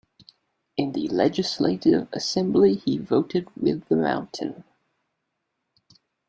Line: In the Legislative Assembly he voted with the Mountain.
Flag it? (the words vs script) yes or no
no